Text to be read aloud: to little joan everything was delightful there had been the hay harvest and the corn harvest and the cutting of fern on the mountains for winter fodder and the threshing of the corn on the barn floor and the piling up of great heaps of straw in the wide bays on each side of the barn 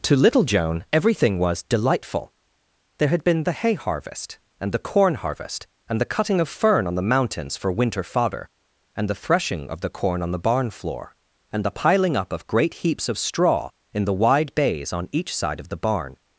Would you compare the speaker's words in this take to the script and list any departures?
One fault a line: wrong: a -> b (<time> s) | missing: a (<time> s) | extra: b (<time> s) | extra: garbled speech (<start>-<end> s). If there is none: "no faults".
no faults